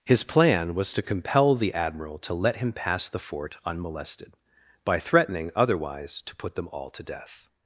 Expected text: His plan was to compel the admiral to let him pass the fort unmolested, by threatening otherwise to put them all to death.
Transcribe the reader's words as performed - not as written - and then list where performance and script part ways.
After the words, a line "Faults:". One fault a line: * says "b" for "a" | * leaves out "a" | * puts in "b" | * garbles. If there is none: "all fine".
His plan was to compel the admiral to let him pass the fort unmolested, by threatening otherwise to put them all to death.
Faults:
all fine